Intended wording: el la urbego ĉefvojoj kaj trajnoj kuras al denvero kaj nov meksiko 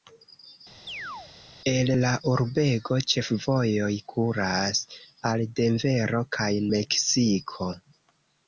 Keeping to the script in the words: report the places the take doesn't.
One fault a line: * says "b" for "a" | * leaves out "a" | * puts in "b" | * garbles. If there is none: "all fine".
* leaves out "kaj trajnoj"
* leaves out "nov"